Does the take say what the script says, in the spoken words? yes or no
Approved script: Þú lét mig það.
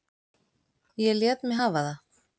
no